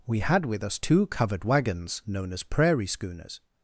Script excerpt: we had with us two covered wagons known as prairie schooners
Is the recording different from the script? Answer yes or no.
no